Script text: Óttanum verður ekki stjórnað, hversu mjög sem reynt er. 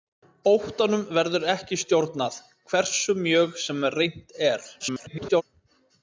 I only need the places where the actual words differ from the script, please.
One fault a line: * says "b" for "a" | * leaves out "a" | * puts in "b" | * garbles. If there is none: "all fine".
* garbles